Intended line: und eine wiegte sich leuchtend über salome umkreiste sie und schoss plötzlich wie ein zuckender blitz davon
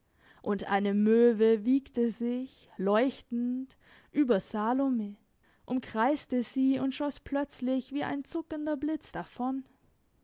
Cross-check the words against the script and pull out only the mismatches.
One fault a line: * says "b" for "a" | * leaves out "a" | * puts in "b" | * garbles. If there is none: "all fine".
* puts in "möwe"